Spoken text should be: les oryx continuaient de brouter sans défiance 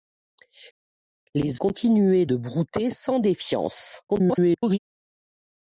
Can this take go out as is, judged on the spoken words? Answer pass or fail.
fail